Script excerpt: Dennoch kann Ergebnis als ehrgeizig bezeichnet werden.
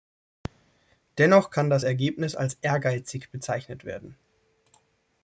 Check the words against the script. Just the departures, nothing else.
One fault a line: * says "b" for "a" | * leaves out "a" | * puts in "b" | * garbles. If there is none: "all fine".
* puts in "das"